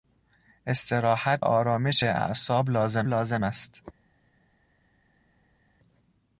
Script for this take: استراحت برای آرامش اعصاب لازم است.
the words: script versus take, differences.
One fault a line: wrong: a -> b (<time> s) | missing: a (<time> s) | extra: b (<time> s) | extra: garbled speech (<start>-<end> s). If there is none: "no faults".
missing: برای (1.4 s)
extra: لازم (3.1 s)